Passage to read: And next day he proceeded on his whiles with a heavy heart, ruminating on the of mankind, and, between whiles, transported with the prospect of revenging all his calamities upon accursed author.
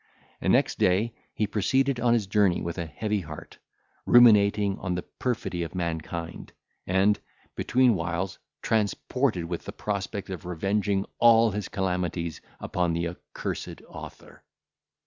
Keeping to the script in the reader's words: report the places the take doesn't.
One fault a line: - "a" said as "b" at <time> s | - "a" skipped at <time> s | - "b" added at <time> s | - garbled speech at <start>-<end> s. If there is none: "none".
- "whiles" said as "journey" at 2.2 s
- "perfidy" added at 5.0 s
- "the" added at 12.9 s